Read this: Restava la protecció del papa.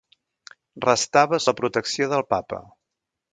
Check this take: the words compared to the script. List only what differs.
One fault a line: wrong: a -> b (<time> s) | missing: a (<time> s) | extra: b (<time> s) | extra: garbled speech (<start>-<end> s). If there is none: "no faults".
no faults